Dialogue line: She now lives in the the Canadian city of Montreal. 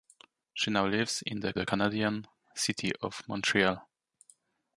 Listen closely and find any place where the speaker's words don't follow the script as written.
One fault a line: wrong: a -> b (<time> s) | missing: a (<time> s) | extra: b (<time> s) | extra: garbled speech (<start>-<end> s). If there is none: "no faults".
no faults